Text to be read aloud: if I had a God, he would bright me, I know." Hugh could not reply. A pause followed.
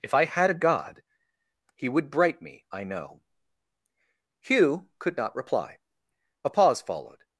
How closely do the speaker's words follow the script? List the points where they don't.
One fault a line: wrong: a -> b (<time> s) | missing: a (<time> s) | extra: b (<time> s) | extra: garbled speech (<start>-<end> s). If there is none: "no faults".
no faults